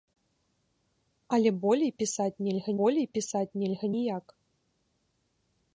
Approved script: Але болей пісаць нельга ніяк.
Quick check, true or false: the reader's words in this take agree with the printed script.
false